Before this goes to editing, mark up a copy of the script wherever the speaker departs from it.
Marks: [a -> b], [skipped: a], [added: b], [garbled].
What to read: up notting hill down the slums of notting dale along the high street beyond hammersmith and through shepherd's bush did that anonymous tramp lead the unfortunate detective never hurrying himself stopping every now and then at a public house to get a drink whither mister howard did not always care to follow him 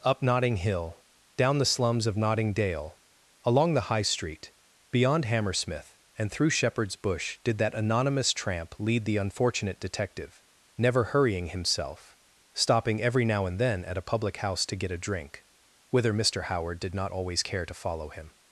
up notting hill down the slums of notting dale along the high street beyond hammersmith and through shepherd's bush did that anonymous tramp lead the unfortunate detective never hurrying himself stopping every now and then at a public house to get a drink whither mister howard did not always care to follow him